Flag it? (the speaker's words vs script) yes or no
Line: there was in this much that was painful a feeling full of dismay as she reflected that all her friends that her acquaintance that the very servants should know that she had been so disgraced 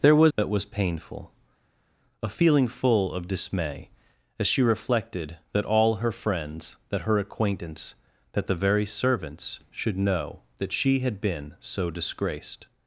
yes